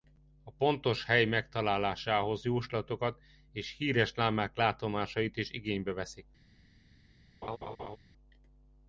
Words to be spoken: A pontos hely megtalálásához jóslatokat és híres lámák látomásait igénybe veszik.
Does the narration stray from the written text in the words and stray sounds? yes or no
yes